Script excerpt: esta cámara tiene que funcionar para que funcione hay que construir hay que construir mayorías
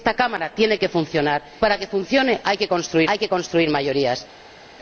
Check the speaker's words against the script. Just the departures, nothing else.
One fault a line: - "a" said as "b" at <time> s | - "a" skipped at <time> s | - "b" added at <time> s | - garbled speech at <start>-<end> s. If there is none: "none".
none